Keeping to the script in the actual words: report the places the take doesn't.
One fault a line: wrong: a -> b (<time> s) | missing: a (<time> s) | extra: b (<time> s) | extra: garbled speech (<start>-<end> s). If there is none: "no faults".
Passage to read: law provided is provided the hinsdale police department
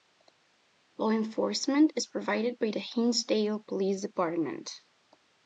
wrong: provided -> enforcement (1.1 s)
extra: by (2.6 s)